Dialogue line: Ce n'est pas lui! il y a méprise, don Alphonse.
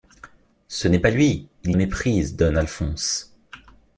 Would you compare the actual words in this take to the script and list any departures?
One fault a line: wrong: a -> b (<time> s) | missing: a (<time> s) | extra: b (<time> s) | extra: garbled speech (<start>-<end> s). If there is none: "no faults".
missing: y (1.7 s)